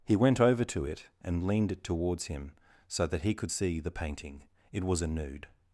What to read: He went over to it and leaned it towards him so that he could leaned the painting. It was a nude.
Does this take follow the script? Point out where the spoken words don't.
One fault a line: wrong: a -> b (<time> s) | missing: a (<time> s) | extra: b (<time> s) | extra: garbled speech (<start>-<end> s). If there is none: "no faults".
wrong: leaned -> see (3.5 s)